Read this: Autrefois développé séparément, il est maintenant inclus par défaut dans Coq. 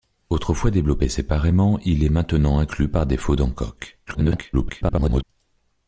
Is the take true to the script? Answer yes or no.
no